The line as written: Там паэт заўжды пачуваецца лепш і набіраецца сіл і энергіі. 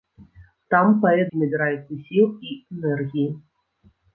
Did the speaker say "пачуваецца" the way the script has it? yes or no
no